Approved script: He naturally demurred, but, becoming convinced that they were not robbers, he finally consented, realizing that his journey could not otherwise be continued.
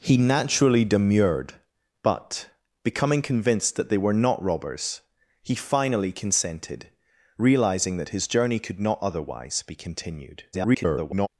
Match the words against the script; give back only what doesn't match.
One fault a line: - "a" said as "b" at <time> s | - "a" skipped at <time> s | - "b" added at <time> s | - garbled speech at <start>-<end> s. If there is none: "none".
- garbled speech at 10.5-11.3 s